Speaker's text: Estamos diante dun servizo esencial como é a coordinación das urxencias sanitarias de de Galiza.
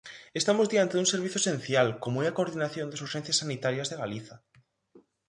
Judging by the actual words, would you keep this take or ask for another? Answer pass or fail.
fail